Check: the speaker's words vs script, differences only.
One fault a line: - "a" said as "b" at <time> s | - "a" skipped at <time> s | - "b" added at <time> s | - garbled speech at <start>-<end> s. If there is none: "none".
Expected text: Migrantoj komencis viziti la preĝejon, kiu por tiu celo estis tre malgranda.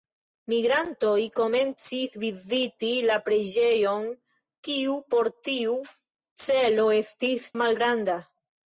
- "tre" skipped at 7.5 s